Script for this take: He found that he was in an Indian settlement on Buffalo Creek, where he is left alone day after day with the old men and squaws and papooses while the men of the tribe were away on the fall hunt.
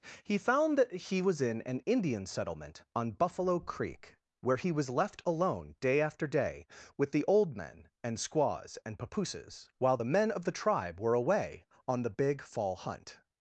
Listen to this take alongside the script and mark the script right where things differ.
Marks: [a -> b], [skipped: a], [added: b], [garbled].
He found that he was in an Indian settlement on Buffalo Creek, where he [is -> was] left alone day after day with the old men and squaws and papooses while the men of the tribe were away on the [added: big] fall hunt.